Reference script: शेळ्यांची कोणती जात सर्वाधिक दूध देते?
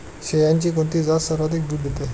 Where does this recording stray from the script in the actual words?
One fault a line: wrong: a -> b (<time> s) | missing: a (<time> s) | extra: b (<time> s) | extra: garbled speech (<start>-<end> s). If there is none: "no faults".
no faults